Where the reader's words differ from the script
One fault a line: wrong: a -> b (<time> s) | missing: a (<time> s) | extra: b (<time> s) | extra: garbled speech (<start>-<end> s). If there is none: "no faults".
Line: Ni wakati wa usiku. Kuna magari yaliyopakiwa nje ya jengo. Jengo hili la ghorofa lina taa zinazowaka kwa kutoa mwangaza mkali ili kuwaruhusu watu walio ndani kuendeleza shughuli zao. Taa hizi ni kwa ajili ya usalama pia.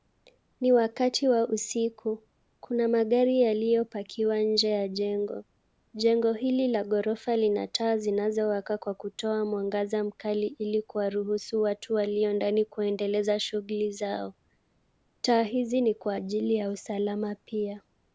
no faults